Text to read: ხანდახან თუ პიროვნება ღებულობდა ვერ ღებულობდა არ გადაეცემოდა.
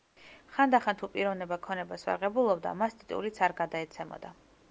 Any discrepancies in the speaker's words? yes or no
yes